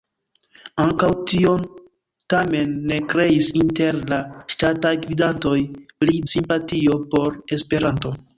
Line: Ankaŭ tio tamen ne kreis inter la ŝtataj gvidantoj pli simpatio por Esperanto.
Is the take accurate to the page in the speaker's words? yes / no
yes